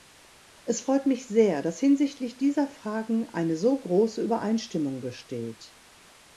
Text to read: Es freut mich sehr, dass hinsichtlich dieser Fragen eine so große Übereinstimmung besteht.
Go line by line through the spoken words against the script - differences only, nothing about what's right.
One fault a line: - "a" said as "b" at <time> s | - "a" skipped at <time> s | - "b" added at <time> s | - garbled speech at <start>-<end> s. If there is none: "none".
none